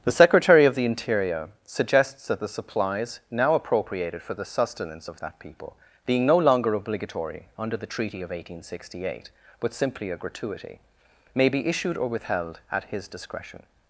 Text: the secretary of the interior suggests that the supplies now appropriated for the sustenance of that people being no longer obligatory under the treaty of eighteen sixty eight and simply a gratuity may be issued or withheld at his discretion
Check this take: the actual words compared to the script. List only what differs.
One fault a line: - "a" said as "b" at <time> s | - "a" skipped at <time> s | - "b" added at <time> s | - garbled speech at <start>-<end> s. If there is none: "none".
- "and" said as "but" at 9.6 s